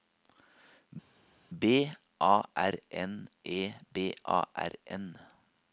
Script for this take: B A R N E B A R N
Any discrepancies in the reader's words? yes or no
no